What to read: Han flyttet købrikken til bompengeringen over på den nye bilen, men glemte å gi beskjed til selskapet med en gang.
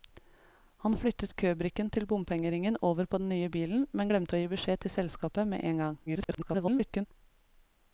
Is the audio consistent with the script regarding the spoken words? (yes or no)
no